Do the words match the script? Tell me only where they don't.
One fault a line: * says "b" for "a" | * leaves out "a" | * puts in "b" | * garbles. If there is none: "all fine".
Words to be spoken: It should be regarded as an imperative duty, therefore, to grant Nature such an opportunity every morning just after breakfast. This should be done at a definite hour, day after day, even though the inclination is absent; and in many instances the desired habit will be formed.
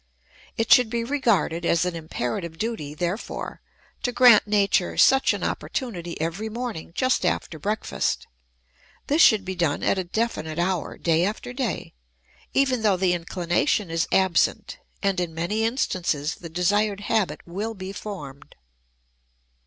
all fine